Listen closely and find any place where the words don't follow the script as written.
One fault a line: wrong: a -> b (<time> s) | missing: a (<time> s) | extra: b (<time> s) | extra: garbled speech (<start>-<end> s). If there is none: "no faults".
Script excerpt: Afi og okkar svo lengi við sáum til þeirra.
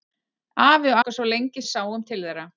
no faults